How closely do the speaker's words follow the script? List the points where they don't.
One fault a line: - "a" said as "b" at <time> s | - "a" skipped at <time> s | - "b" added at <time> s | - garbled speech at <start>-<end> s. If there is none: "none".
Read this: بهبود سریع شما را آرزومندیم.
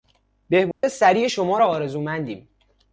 none